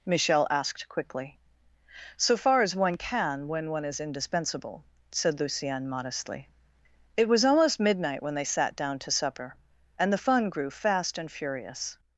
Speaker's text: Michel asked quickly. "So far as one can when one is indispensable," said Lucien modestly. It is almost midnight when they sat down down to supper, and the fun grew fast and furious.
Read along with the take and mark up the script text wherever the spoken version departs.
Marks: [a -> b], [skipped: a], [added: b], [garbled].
Michel asked quickly. "So far as one can when one is indispensable," said Lucien modestly. It [is -> was] almost midnight when they sat down [skipped: down] to supper, and the fun grew fast and furious.